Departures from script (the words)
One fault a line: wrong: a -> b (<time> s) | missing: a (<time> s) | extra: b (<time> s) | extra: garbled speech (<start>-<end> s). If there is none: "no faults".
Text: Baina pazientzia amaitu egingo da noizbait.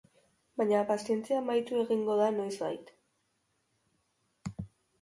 no faults